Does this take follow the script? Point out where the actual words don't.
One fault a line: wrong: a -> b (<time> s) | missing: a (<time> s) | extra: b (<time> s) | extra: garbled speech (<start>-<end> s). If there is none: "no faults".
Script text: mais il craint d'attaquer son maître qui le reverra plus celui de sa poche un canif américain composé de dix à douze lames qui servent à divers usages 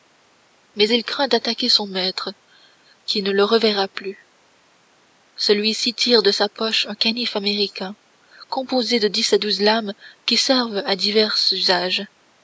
extra: ne (3.2 s)
extra: ci tire (5.7 s)